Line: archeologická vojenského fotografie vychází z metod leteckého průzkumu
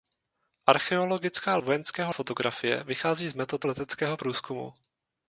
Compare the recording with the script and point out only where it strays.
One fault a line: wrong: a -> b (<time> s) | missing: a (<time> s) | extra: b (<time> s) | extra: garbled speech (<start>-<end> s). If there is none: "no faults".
no faults